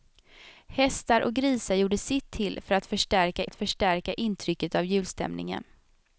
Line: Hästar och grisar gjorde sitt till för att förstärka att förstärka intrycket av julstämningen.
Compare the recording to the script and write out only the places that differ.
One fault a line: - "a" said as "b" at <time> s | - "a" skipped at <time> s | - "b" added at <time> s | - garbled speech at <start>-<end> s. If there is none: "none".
none